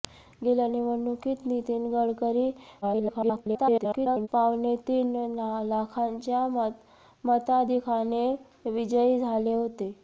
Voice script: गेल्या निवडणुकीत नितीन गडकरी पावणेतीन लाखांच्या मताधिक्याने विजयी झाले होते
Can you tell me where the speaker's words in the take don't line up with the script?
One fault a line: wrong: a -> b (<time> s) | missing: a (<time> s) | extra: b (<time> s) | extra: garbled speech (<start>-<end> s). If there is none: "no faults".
extra: garbled speech (2.8-4.3 s)